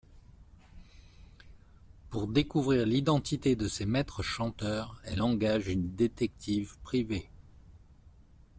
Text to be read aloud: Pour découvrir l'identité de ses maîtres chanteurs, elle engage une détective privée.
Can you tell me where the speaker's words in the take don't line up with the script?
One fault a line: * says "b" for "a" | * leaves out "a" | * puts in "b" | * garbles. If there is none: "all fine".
all fine